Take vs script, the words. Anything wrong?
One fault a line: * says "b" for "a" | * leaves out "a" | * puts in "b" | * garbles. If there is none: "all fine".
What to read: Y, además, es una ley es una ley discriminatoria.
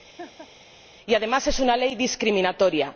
* leaves out "es una ley"